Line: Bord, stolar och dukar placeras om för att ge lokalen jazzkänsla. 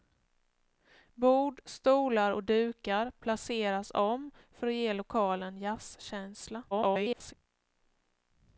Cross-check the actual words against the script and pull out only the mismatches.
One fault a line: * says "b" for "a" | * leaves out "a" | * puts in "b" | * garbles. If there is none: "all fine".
* garbles